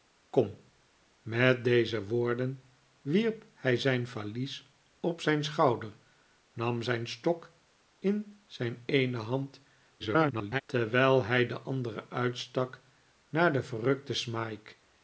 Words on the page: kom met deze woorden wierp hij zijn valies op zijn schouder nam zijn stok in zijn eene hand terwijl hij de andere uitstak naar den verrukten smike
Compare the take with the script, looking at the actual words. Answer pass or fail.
fail